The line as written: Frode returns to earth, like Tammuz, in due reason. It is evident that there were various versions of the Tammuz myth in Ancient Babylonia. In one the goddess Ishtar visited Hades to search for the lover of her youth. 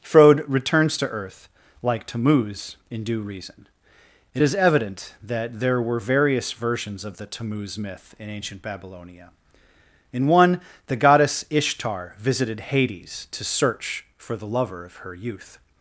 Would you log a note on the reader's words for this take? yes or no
no